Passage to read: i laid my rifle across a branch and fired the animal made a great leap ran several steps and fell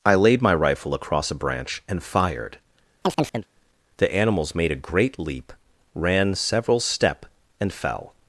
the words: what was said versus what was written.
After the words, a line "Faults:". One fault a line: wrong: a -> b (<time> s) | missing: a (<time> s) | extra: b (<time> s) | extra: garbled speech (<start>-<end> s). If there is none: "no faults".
i laid my rifle across a branch and fired the animals made a great leap ran several step and fell
Faults:
wrong: animal -> animals (4.1 s)
wrong: steps -> step (6.8 s)